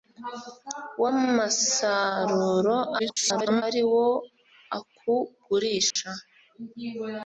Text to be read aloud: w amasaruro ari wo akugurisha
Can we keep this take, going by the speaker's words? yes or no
no